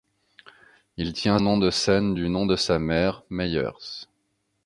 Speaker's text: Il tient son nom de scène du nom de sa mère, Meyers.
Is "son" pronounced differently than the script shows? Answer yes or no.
yes